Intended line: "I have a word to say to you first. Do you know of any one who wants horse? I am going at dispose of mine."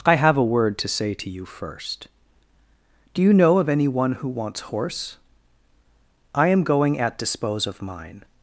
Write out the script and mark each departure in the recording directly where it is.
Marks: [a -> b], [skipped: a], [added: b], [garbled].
"I have a word to say to you first. Do you know of any one who wants horse? I am going at dispose of mine."